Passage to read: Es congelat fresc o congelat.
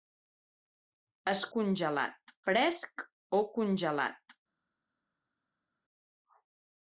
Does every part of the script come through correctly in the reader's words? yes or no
yes